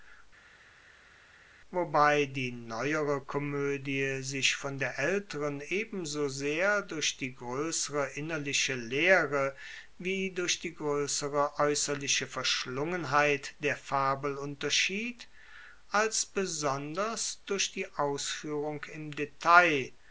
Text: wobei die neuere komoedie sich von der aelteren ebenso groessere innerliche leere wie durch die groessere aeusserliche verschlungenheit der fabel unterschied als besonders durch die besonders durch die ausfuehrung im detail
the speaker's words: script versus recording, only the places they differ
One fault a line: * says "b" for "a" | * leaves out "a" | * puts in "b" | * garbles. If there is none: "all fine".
* puts in "sehr durch die"
* leaves out "besonders durch die"